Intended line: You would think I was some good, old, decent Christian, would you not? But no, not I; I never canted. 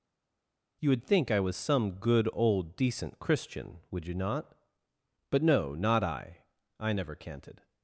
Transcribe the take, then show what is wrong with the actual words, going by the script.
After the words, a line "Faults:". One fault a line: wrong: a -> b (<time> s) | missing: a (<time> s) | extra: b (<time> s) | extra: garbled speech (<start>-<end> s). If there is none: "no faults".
You would think I was some good, old, decent Christian, would you not? But no, not I; I never canted.
Faults:
no faults